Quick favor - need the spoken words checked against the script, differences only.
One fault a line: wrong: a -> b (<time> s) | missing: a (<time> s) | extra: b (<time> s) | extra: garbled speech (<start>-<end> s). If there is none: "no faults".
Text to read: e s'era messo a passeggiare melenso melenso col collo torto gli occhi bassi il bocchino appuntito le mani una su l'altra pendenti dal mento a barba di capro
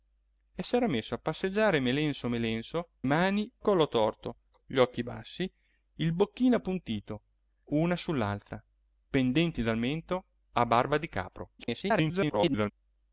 wrong: col -> mani (3.0 s)
missing: le mani (7.2 s)
extra: garbled speech (11.6-12.7 s)